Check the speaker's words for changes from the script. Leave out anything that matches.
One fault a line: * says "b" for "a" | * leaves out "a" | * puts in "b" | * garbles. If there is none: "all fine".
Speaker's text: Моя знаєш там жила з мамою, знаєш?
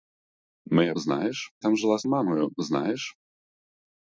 all fine